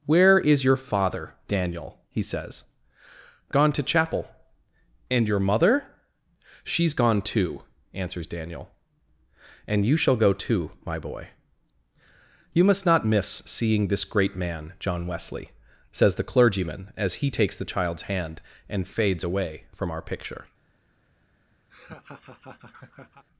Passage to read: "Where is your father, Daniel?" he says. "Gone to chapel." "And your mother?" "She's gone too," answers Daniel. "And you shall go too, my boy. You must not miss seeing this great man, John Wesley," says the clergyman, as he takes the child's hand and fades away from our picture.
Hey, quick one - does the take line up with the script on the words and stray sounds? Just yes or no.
no